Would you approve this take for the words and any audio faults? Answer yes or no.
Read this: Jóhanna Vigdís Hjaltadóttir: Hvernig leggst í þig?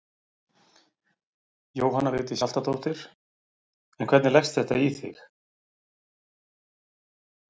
no